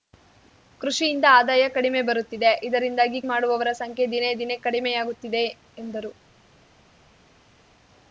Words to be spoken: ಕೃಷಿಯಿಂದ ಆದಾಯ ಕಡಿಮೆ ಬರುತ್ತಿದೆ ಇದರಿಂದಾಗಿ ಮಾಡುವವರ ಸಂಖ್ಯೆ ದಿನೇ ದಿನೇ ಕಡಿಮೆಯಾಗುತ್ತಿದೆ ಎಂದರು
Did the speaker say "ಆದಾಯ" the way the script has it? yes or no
yes